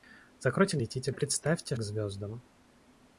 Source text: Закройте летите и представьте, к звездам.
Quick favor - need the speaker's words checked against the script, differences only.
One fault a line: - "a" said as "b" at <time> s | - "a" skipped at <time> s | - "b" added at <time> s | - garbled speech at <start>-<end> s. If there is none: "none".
none